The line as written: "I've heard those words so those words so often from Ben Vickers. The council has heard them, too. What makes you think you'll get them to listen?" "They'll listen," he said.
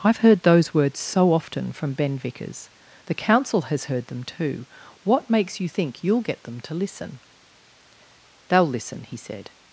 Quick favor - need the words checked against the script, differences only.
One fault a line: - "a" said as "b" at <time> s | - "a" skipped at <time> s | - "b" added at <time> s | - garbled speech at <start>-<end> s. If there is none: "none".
- "those words so" skipped at 1.3 s